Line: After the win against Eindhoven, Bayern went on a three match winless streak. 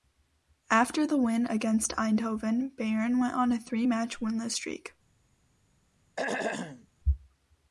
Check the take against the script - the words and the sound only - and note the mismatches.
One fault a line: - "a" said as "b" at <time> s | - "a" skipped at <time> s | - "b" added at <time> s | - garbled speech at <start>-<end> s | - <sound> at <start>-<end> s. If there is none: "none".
- throat clearing at 6.2-6.9 s